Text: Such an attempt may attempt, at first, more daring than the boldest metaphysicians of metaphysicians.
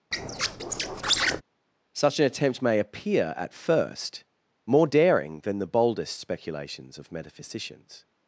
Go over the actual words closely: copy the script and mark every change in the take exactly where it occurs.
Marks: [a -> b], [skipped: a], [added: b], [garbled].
Such an attempt may [attempt, -> appear] at first, more daring than the boldest [metaphysicians -> speculations] of metaphysicians.